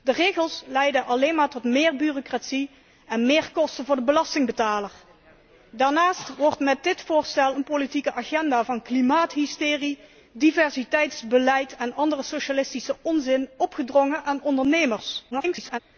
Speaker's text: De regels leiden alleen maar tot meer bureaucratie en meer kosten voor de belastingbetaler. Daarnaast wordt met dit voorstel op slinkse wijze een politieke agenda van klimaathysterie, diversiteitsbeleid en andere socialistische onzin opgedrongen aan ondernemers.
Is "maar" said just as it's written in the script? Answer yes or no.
yes